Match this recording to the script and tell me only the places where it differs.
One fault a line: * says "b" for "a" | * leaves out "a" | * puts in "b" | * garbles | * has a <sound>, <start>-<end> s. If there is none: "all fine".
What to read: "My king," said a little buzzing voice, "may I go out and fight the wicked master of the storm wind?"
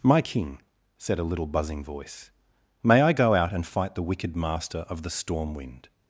all fine